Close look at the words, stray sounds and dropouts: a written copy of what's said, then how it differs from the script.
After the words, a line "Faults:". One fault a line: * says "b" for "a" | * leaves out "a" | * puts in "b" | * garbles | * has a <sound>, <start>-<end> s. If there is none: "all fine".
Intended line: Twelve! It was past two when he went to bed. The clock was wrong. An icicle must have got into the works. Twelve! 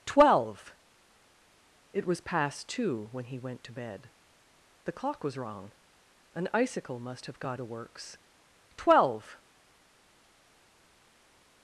Twelve! It was past two when he went to bed. The clock was wrong. An icicle must have got the works. Twelve!
Faults:
* leaves out "into"